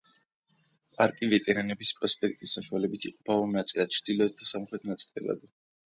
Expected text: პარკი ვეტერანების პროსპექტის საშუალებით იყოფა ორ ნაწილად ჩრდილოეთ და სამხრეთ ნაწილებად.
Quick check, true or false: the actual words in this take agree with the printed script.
true